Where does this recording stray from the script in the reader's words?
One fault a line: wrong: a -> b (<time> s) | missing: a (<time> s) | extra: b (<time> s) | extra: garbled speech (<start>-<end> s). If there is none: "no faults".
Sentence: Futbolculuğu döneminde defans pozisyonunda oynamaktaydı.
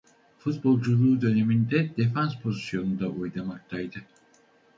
no faults